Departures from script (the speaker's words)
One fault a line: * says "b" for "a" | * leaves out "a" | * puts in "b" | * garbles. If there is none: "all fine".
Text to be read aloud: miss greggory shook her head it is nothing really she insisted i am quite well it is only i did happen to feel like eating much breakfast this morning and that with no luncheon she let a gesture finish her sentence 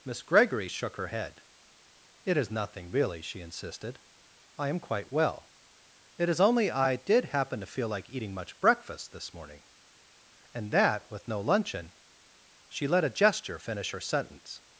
all fine